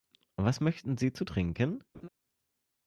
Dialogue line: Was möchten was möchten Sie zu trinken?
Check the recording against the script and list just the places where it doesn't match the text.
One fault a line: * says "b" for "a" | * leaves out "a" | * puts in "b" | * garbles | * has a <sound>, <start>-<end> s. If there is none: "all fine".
* leaves out "was möchten"
* has a laugh, 1.9-2.1 s